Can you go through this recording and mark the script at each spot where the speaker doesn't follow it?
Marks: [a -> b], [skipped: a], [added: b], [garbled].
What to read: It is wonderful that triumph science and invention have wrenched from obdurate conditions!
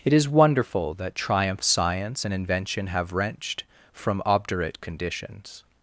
It is wonderful that triumph science and invention have wrenched from obdurate conditions!